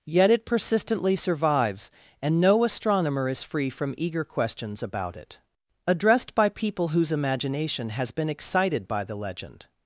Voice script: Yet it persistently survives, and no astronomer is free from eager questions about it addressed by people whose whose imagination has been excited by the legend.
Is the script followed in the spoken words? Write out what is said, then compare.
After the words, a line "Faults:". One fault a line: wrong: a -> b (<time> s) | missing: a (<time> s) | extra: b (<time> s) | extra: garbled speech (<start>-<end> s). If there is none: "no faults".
Yet it persistently survives, and no astronomer is free from eager questions about it addressed by people whose imagination has been excited by the legend.
Faults:
missing: whose (7.1 s)